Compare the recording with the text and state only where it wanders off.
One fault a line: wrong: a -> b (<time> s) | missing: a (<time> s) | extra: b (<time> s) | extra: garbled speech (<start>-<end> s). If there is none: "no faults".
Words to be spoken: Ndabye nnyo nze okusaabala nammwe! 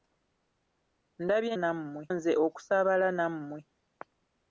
wrong: nnyo -> nammwe (1.6 s)